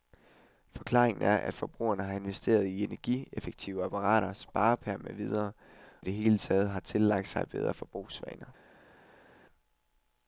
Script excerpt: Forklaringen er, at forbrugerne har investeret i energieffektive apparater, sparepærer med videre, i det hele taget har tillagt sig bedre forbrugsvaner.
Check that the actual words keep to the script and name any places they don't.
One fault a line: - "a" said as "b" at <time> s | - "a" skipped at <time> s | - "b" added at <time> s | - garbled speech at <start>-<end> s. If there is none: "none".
none